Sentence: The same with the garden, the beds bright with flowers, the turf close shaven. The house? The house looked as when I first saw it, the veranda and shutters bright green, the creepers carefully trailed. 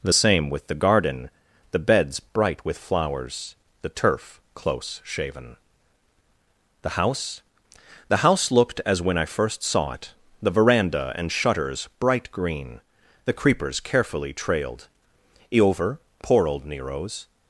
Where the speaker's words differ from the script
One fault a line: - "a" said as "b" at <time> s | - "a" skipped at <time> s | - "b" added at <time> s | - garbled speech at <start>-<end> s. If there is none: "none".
- "Eover poor old Nero's" added at 15.5 s